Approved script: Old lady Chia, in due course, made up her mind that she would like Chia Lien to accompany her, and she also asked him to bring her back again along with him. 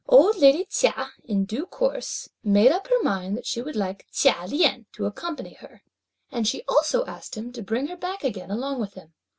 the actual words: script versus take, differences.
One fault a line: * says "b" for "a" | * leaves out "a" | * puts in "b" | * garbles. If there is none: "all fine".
all fine